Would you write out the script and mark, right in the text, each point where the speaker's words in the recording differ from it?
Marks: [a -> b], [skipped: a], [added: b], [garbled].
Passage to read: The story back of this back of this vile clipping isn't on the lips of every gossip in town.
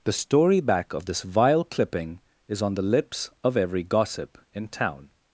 The story back of this [skipped: back of this] vile clipping [isn't -> is] on the lips of every gossip in town.